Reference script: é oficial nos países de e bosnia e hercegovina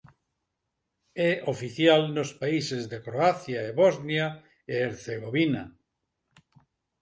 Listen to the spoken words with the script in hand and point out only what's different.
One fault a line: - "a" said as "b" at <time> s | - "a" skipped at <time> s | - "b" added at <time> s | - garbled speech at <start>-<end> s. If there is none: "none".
- "croacia" added at 3.1 s